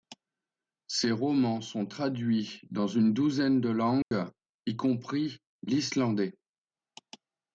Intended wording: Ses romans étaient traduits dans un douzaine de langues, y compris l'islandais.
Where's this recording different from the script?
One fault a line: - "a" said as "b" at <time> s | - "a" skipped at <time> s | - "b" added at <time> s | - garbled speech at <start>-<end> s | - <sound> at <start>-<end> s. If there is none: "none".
- "étaient" said as "sont" at 1.6 s
- "un" said as "une" at 2.9 s
- dropout at 4.0-4.1 s